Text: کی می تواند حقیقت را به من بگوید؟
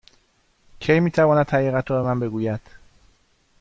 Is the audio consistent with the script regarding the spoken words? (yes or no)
yes